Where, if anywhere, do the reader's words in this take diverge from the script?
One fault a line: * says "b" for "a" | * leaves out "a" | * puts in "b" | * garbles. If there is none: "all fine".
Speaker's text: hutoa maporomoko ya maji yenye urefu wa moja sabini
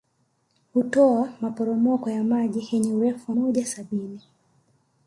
all fine